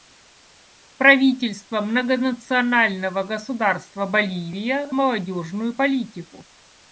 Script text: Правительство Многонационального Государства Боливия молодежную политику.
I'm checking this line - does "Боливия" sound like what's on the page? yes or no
yes